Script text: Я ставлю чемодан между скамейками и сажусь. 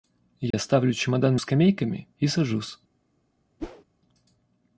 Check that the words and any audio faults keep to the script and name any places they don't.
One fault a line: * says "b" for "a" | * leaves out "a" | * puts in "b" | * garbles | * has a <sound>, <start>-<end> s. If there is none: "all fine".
* has a dropout, 0.5-0.5 s
* leaves out "между"
* has a whoosh, 3.6-3.8 s